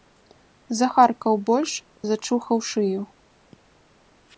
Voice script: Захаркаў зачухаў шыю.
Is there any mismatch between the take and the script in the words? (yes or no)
yes